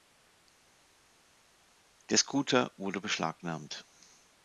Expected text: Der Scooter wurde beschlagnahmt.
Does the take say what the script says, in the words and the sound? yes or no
yes